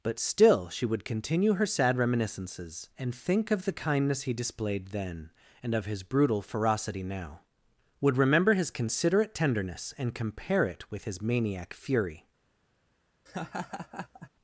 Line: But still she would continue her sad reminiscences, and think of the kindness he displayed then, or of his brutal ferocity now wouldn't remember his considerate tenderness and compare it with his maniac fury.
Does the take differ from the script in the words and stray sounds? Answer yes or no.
yes